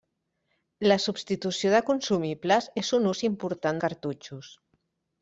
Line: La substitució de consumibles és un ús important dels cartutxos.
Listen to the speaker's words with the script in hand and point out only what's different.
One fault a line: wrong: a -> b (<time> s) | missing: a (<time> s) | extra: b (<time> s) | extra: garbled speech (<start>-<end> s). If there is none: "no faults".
missing: dels (3.8 s)